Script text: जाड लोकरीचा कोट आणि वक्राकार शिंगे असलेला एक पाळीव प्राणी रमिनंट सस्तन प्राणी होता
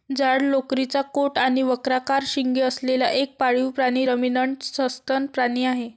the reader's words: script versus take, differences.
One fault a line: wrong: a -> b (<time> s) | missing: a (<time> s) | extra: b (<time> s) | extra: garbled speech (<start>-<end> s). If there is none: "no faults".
wrong: होता -> आहे (5.6 s)